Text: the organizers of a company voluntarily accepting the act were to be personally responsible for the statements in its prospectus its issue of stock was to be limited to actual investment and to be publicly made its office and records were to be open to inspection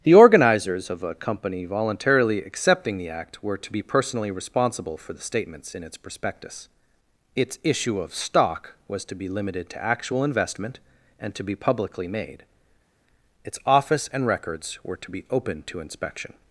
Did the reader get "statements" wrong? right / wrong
right